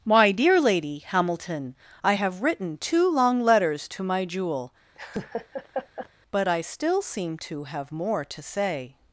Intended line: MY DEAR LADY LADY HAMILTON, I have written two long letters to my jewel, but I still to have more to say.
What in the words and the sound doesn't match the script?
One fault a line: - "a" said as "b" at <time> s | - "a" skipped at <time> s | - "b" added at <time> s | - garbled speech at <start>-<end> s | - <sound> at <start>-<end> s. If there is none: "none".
- "LADY" skipped at 1.0 s
- laugh at 5.0-6.1 s
- "seem" added at 7.0 s